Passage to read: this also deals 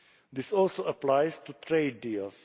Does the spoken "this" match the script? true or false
true